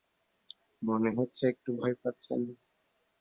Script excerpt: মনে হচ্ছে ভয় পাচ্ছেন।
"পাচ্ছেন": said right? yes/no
yes